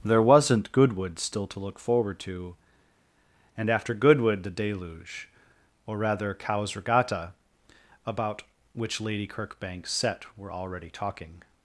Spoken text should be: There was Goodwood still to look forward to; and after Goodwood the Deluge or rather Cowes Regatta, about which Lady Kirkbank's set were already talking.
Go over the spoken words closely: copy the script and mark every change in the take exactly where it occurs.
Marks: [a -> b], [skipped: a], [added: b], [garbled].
There [was -> wasn't] Goodwood still to look forward to; and after Goodwood the Deluge or rather Cowes Regatta, about which Lady Kirkbank's set were already talking.